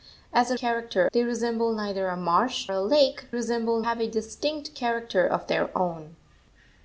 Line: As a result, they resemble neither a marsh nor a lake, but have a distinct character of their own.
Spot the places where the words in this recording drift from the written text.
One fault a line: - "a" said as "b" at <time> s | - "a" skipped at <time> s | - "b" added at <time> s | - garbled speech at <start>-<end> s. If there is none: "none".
- "result" said as "character" at 0.6 s
- "nor" skipped at 2.7 s
- "but" said as "resemble" at 3.3 s